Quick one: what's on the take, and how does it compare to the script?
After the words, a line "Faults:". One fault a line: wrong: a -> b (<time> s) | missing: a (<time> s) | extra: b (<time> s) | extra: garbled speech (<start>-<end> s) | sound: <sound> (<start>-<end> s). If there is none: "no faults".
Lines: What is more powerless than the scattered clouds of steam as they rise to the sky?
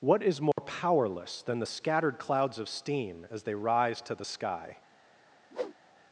What is more powerless than the scattered clouds of steam as they rise to the sky?
Faults:
sound: dropout (0.5-0.6 s)
sound: whoosh (5.5-5.8 s)